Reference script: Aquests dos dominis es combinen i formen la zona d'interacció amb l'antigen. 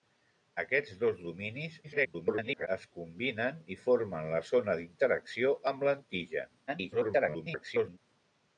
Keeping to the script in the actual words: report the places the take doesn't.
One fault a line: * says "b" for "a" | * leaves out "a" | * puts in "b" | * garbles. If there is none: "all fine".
* garbles
* garbles